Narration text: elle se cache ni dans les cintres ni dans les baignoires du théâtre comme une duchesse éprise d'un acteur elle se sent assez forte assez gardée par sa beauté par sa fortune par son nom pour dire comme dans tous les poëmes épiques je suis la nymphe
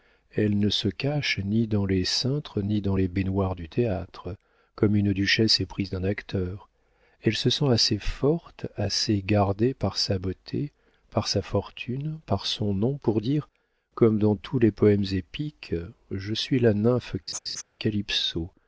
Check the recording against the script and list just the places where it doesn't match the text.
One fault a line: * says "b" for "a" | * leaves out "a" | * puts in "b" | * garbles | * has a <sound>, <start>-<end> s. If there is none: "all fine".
* puts in "ne"
* has a laugh, 17.3-17.6 s